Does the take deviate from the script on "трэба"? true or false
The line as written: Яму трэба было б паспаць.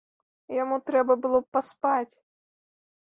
false